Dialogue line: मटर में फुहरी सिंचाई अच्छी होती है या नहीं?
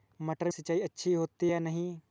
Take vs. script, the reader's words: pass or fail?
fail